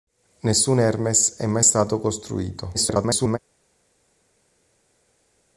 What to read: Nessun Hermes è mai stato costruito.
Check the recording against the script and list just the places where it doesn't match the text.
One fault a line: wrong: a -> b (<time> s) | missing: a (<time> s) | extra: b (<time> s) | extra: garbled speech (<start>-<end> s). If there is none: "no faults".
extra: garbled speech (2.7-3.4 s)